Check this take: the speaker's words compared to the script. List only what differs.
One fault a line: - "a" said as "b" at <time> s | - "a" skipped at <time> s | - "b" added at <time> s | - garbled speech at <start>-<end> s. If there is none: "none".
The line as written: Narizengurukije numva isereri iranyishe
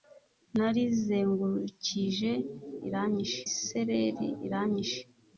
- "numva" said as "iranyishe" at 2.9 s